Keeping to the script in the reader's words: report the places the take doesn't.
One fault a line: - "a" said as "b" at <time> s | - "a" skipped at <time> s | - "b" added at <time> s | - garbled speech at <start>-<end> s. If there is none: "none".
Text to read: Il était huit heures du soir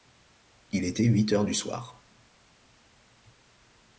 none